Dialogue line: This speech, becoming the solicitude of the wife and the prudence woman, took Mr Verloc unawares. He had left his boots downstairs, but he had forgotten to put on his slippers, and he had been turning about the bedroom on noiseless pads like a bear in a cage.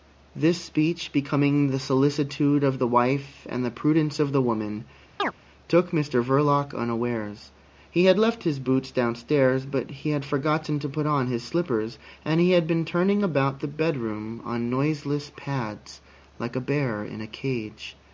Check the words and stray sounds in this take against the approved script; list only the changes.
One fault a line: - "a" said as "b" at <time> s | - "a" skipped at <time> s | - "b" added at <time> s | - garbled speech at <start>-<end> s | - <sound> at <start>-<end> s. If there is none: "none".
- "of the" added at 4.2 s
- chirp at 5.2-5.3 s